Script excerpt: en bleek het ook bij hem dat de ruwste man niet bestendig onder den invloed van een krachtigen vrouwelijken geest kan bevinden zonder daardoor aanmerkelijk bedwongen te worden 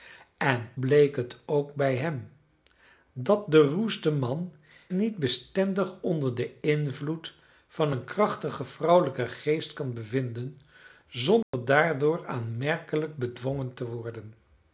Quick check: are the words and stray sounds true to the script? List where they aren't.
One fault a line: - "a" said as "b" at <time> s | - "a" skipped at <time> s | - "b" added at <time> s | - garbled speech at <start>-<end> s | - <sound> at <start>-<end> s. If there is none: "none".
- dropout at 11.4-11.5 s